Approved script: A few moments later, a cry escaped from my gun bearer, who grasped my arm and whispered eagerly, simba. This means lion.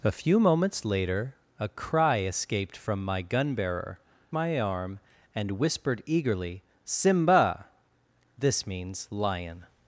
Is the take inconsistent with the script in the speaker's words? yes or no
yes